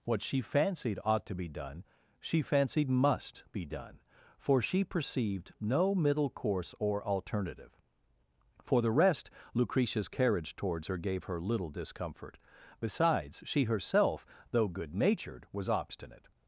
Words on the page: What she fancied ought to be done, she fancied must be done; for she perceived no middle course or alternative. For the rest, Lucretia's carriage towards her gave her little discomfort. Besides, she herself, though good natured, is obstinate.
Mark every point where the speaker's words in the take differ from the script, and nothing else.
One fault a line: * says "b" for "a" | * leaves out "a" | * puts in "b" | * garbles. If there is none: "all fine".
* says "was" for "is"